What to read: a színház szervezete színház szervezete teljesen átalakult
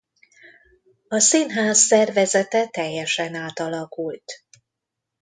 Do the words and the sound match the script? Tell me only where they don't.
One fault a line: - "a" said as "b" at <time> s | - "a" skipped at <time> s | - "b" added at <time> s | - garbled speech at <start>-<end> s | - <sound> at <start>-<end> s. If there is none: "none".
- "színház szervezete" skipped at 2.7 s